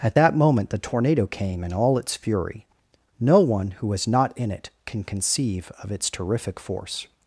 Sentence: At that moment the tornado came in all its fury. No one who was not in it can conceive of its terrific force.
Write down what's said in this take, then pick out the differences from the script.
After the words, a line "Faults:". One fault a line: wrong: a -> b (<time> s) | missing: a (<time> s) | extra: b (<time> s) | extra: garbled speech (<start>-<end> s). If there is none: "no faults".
At that moment the tornado came in all its fury. No one who was not in it can conceive of its terrific force.
Faults:
no faults